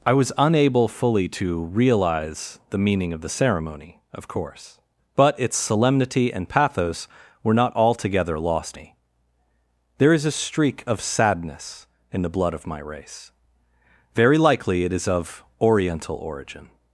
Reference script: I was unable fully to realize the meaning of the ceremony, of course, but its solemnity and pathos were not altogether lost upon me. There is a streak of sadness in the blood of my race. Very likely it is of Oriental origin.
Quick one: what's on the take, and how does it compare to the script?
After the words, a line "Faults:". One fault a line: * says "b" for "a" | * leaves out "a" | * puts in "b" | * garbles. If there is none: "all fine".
I was unable fully to realize the meaning of the ceremony, of course, but its solemnity and pathos were not altogether lost me. There is a streak of sadness in the blood of my race. Very likely it is of Oriental origin.
Faults:
* leaves out "upon"